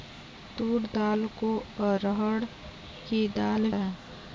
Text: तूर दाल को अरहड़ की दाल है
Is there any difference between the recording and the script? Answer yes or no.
no